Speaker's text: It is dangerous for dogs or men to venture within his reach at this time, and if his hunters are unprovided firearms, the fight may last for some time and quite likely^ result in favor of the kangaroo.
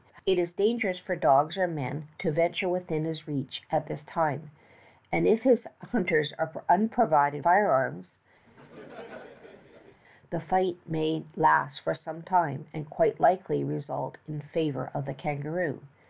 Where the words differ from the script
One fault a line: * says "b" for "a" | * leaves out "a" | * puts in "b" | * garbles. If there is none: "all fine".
all fine